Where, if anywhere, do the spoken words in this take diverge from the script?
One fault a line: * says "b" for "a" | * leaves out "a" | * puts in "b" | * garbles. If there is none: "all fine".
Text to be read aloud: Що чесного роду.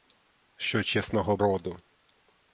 all fine